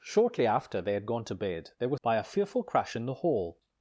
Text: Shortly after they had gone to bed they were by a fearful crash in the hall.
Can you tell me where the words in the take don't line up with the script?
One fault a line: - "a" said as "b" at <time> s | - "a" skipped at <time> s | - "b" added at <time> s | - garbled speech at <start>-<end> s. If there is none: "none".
none